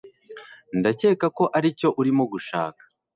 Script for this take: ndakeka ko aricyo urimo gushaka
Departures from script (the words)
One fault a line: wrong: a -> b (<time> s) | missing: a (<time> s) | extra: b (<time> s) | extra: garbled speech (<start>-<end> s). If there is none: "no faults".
no faults